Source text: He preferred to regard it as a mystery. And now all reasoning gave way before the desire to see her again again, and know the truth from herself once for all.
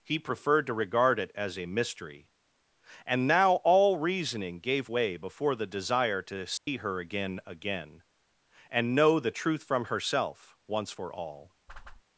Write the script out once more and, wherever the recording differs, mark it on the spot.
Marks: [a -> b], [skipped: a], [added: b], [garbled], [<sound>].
He preferred to regard it as a mystery. And now all reasoning gave way before the desire to see [dropout] her again again, and know the truth from herself once for all. [whoosh]